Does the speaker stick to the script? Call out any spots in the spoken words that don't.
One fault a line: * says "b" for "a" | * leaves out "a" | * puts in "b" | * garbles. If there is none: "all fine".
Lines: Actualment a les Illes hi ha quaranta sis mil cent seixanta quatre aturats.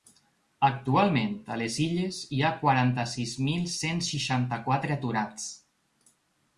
all fine